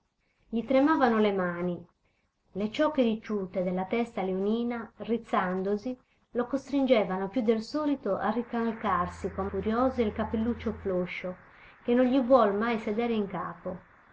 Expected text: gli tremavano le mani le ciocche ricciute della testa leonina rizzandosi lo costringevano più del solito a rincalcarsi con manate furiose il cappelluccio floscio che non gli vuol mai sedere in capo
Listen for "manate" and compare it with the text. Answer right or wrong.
wrong